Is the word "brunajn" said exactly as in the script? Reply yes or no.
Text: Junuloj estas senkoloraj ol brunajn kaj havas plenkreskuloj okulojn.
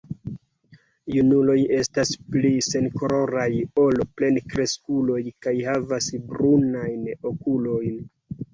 no